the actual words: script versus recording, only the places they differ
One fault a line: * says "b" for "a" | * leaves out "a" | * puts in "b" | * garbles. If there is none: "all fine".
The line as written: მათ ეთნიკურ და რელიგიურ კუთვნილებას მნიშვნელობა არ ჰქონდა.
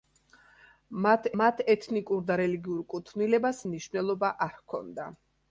* puts in "მათ"